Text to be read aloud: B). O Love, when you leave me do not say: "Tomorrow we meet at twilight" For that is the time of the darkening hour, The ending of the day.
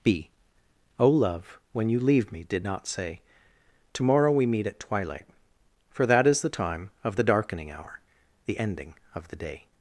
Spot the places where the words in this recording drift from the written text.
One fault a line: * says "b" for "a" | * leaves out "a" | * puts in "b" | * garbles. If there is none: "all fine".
* says "did" for "do"